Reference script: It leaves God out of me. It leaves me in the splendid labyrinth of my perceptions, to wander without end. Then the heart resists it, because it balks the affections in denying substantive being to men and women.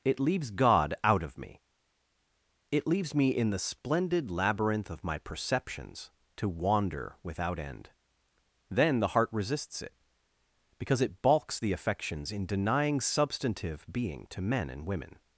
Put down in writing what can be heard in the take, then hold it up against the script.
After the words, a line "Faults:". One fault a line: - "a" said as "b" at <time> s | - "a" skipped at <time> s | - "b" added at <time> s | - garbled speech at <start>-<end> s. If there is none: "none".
It leaves God out of me. It leaves me in the splendid labyrinth of my perceptions, to wander without end. Then the heart resists it, because it balks the affections in denying substantive being to men and women.
Faults:
none